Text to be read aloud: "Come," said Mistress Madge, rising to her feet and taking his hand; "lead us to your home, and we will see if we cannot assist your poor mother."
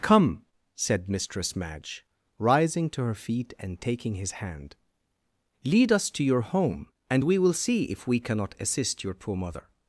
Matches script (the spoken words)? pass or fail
pass